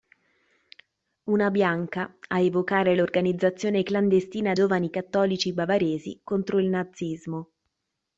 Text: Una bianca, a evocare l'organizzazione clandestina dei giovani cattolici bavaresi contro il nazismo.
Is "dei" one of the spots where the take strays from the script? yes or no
yes